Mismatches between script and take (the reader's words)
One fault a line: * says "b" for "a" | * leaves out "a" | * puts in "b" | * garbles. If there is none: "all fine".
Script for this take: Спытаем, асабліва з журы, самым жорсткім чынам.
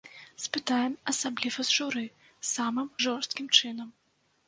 all fine